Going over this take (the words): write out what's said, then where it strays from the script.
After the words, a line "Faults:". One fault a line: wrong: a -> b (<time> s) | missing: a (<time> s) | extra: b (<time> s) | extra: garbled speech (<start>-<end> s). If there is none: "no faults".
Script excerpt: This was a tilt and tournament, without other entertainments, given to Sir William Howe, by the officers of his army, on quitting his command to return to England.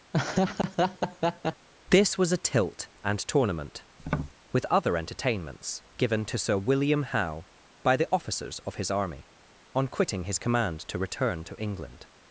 This was a tilt and tournament, with other entertainments, given to Sir William Howe, by the officers of his army, on quitting his command to return to England.
Faults:
wrong: without -> with (4.5 s)